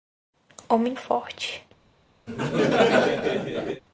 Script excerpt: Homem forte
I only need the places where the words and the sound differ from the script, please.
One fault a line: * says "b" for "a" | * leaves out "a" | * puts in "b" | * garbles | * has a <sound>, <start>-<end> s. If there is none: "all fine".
* has a laugh, 2.3-3.8 s